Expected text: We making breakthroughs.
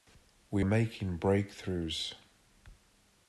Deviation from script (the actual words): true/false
false